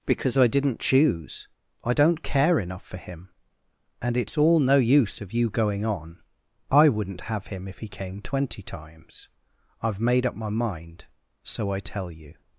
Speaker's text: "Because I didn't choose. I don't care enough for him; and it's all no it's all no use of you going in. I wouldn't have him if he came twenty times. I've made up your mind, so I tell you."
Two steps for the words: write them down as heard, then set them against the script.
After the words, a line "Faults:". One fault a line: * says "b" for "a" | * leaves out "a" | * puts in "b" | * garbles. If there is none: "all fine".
"Because I didn't choose. I don't care enough for him; and it's all no use of you going on. I wouldn't have him if he came twenty times. I've made up my mind, so I tell you."
Faults:
* leaves out "it's all no"
* says "on" for "in"
* says "my" for "your"